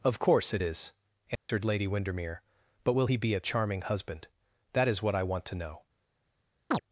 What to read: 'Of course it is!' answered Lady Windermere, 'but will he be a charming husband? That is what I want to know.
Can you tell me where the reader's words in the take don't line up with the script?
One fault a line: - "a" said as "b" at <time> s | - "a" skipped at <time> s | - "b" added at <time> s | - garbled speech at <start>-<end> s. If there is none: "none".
none